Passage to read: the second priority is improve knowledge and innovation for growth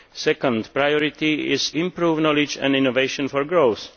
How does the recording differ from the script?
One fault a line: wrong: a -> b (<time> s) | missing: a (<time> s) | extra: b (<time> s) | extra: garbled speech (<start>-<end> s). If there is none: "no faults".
no faults